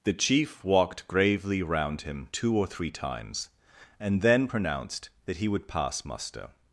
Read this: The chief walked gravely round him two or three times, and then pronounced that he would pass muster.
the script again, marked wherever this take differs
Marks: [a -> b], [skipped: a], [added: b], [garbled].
The chief walked gravely round him two or three times, and then pronounced that he would pass muster.